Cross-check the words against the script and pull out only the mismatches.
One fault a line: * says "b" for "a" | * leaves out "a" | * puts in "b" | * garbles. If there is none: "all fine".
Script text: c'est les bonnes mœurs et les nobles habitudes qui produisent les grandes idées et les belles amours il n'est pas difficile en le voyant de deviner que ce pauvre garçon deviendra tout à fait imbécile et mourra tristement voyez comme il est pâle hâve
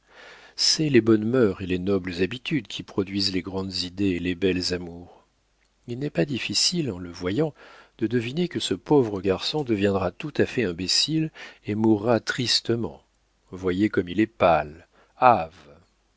all fine